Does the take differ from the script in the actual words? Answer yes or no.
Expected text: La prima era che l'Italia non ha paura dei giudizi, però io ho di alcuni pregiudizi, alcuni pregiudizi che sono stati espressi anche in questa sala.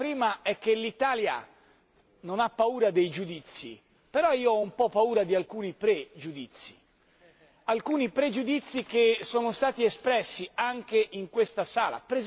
yes